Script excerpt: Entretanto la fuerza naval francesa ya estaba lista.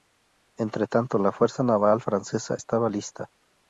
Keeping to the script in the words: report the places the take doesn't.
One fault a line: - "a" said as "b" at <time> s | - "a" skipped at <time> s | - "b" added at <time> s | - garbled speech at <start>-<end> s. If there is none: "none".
- "ya" skipped at 2.6 s